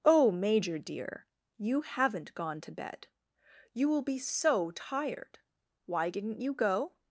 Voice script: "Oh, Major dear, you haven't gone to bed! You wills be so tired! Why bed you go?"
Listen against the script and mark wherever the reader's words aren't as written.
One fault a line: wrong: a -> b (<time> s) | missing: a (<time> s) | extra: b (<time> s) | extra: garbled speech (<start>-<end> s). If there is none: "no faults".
wrong: wills -> will (3.9 s)
wrong: bed -> didn't (6.1 s)